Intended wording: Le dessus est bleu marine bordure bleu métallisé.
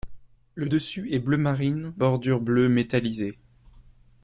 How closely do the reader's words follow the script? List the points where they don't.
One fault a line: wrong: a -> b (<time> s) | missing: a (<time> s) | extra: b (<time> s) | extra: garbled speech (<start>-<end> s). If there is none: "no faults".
no faults